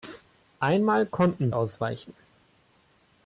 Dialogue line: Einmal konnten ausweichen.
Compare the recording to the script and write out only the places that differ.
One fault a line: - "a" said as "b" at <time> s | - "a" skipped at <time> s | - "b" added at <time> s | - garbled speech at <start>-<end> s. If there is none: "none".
none